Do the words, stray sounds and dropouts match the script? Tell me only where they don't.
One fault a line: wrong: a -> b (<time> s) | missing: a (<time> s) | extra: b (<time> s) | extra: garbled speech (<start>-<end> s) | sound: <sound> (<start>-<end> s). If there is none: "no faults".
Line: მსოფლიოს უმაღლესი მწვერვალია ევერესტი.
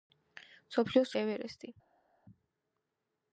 missing: უმაღლესი მწვერვალია (1.1 s)